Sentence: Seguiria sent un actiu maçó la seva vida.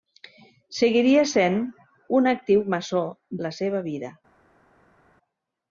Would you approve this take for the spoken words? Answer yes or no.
yes